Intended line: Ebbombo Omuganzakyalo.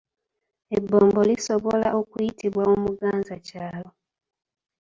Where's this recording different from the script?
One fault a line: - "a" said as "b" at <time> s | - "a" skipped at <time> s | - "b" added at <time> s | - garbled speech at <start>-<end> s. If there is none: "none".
- "lisobola okuyitibwa" added at 1.3 s